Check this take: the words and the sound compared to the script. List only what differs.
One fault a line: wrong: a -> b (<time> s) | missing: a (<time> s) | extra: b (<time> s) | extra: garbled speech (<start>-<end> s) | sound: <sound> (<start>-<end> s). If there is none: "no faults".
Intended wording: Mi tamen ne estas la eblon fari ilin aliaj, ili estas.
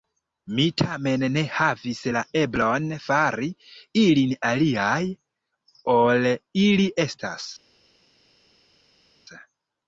wrong: estas -> havis (1.6 s)
extra: ol (6.0 s)